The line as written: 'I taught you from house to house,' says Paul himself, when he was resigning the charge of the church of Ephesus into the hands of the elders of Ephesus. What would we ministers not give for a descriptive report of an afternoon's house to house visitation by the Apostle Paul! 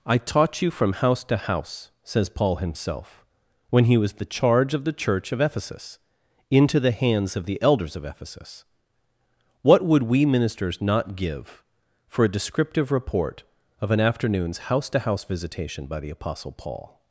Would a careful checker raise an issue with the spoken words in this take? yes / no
yes